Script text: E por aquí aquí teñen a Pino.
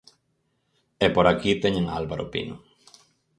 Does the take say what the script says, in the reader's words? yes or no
no